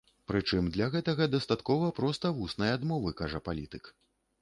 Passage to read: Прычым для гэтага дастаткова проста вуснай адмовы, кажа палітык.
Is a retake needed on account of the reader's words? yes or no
no